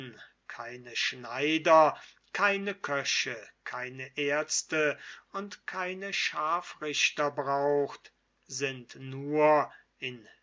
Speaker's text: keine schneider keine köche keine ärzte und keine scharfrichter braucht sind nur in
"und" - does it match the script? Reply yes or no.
yes